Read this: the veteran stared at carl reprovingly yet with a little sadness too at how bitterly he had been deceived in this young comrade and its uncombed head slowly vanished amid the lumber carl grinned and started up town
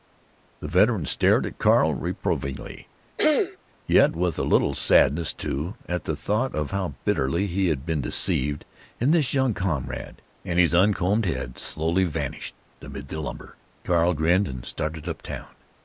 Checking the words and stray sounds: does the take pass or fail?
fail